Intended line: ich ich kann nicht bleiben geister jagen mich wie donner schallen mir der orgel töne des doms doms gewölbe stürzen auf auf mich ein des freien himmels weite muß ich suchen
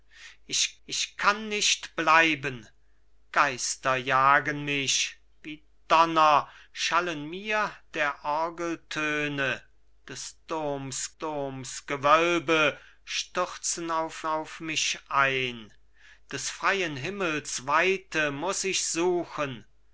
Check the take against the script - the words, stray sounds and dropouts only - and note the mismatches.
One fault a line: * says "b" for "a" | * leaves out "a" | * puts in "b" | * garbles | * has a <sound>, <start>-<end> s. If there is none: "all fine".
all fine